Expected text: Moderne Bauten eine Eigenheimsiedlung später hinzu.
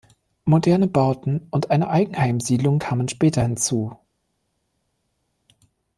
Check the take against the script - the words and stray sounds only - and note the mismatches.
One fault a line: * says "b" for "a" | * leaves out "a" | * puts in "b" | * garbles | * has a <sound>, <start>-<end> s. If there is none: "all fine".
* puts in "und"
* puts in "kamen"